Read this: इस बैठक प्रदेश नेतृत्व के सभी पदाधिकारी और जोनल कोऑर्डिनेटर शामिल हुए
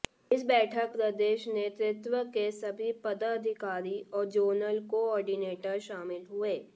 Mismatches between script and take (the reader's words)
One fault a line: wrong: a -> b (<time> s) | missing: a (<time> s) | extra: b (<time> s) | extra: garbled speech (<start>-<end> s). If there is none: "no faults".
no faults